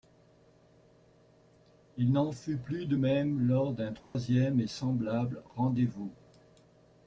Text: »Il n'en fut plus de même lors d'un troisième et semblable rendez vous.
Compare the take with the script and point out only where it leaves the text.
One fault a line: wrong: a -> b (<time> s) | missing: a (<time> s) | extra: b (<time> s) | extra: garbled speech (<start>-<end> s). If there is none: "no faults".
no faults